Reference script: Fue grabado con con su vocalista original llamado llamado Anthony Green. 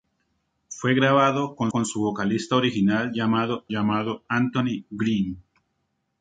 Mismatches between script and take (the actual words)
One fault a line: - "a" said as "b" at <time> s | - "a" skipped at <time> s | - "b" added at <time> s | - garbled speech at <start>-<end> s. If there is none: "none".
none